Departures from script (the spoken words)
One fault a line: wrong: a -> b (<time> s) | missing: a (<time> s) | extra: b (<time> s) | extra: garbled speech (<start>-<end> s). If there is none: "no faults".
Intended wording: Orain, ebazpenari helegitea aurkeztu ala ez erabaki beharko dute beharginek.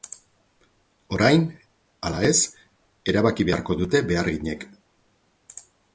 missing: ebazpenari helegitea aurkeztu (1.4 s)